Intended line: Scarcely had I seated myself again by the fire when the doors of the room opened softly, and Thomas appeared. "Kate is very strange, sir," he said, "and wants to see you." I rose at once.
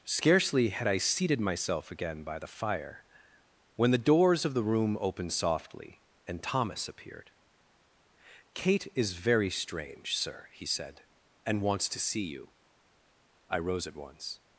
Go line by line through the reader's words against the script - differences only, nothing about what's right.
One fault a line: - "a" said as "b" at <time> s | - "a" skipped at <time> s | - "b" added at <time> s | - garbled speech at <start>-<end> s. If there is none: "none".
none